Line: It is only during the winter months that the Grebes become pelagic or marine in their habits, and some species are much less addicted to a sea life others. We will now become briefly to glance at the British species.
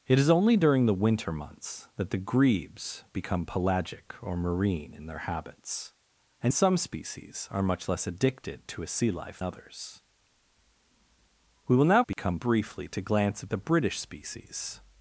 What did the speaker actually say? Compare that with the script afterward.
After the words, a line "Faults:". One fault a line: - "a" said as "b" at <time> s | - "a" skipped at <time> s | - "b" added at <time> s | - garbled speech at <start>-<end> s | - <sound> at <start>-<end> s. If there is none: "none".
It is only during the winter months that the Grebes become pelagic or marine in their habits, and some species are much less addicted to a sea life others. We will now become briefly to glance at the British species.
Faults:
- dropout at 12.1-12.2 s